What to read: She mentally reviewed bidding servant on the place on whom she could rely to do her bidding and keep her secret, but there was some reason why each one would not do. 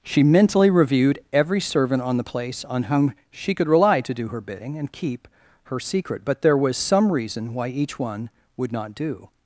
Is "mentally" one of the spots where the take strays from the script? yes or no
no